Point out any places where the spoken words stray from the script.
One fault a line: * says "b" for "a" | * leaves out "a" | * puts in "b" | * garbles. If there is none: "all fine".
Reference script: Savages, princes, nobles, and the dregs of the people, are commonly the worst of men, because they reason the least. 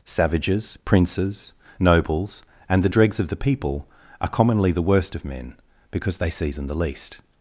* says "season" for "reason"